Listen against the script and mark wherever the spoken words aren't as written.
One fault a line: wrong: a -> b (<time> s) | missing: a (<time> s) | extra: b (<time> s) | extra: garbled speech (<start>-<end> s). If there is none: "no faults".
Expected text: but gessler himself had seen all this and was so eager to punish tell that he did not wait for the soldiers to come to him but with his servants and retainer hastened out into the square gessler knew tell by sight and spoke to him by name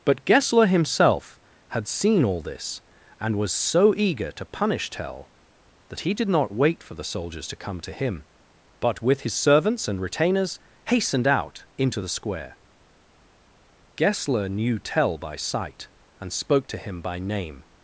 wrong: retainer -> retainers (10.0 s)